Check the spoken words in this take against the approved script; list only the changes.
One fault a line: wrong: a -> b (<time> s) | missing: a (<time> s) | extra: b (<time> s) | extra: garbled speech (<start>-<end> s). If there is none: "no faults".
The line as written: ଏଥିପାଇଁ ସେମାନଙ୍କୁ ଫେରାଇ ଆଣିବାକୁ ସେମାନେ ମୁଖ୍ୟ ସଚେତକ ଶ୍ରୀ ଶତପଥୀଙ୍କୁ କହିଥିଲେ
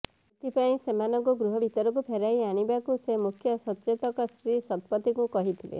extra: ଗୃହ ଭିତରକୁ (1.4 s)
wrong: ସେମାନେ -> ସେ (3.0 s)